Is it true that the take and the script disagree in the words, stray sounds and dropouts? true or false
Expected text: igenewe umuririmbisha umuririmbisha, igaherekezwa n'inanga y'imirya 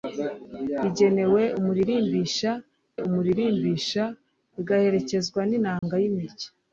true